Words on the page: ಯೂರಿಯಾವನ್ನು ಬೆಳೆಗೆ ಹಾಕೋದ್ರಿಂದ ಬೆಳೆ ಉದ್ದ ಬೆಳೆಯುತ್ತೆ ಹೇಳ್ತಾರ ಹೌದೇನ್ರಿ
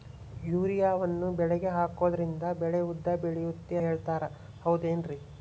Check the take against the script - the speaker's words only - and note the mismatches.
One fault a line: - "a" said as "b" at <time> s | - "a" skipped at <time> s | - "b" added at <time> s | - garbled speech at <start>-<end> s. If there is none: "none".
none